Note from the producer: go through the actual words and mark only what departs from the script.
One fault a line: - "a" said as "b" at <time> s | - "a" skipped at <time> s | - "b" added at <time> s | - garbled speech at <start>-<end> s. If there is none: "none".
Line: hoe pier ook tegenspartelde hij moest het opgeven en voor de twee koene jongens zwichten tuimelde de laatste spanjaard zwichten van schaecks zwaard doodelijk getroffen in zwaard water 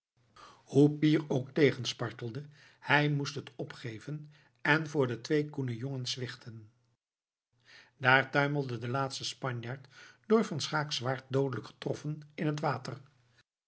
- "daar" added at 8.0 s
- "zwichten" said as "door" at 10.3 s
- "zwaard" said as "het" at 12.5 s